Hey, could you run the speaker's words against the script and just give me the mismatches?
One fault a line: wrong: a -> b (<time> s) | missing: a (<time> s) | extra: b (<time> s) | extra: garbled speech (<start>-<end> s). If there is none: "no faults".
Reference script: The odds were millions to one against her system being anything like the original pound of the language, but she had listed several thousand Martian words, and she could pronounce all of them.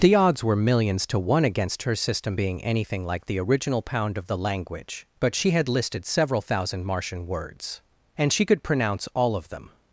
no faults